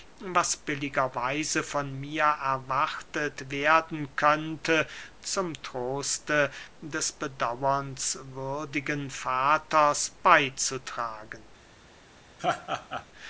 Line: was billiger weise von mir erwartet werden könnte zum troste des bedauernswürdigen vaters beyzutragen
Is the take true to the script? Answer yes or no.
yes